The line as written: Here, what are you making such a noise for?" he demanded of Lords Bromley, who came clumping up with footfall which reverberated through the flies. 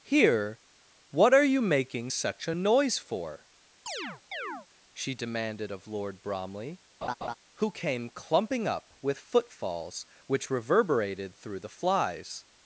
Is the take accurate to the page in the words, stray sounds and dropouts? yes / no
no